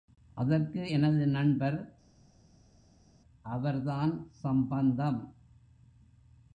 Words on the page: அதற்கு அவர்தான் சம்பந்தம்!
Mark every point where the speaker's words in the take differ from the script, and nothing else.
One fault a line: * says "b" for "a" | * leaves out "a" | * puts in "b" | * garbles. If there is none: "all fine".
* puts in "எனது நண்பர்"